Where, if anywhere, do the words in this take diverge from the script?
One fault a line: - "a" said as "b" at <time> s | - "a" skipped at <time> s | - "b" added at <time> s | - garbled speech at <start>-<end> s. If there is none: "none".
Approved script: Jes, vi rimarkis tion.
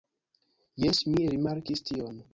- "vi" said as "mi" at 1.1 s